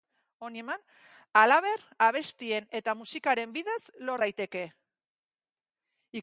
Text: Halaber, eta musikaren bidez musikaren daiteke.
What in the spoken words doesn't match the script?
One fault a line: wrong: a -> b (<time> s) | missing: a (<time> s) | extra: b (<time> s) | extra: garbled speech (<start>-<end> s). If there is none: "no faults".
extra: abestien (2.0 s)
wrong: musikaren -> lor (4.0 s)